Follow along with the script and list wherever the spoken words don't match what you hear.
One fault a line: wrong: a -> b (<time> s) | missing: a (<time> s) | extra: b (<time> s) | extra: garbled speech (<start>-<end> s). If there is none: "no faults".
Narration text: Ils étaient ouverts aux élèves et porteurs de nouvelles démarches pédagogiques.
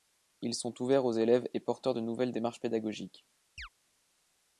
wrong: étaient -> sont (0.6 s)